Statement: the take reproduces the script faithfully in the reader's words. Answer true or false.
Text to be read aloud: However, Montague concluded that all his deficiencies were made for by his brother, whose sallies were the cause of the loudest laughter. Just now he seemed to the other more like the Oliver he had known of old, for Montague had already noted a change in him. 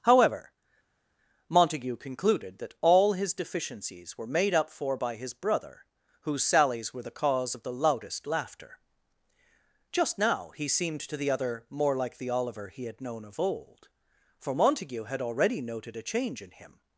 false